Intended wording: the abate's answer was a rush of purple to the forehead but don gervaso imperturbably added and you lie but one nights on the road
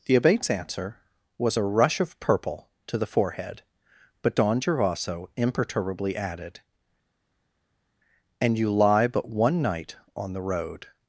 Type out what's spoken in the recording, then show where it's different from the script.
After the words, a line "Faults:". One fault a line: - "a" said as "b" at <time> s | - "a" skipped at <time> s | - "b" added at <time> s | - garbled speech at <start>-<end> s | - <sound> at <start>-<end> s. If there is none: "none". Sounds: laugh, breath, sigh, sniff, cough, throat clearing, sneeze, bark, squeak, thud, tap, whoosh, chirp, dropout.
the abate's answer was a rush of purple to the forehead but don gervaso imperturbably added and you lie but one night on the road
Faults:
- "nights" said as "night" at 9.6 s